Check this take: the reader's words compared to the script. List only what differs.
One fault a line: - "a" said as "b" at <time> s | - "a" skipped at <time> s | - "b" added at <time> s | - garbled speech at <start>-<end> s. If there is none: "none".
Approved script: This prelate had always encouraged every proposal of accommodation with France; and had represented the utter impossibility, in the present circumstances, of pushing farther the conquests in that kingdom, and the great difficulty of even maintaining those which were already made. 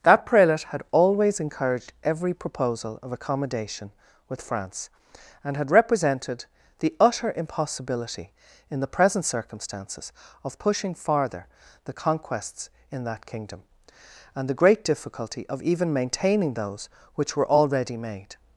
- "This" said as "That" at 0.0 s